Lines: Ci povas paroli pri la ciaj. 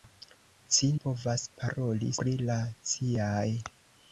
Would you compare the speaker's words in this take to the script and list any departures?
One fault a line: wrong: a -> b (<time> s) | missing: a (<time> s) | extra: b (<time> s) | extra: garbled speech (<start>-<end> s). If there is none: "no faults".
no faults